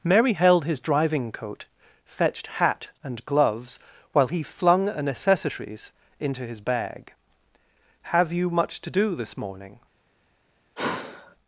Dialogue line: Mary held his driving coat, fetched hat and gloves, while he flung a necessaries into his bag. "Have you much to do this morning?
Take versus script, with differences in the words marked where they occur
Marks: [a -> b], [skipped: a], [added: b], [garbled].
Mary held his driving coat, fetched hat and gloves, while he flung a necessaries into his bag. "Have you much to do this morning?